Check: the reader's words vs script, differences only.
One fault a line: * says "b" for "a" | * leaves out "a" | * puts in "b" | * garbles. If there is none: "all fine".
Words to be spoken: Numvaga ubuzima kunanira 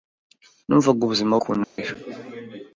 all fine